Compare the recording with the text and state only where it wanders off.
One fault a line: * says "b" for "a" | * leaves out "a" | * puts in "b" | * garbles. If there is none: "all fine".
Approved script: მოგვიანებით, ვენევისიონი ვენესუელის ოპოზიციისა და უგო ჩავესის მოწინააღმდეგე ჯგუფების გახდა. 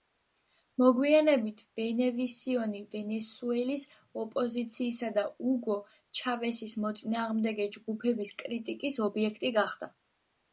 * puts in "კრიტიკის ობიექტი"